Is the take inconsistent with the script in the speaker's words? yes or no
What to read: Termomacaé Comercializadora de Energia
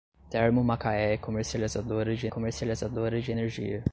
yes